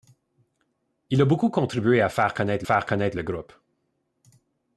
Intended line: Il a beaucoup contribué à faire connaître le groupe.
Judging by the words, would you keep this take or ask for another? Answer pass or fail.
fail